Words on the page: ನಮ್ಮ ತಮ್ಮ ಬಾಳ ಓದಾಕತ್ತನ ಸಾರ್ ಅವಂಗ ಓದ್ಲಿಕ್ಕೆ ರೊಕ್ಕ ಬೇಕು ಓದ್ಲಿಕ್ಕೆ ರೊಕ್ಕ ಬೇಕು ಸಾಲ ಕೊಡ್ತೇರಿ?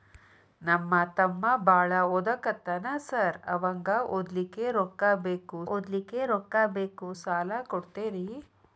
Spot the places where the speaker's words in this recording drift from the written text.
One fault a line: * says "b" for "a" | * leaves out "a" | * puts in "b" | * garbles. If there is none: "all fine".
all fine